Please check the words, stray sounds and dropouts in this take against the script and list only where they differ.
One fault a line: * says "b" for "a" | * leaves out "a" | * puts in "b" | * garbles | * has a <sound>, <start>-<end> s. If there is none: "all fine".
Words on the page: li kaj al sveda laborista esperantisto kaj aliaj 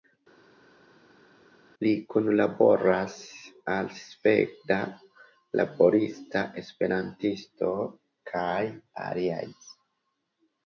* says "kunlaboras" for "kaj"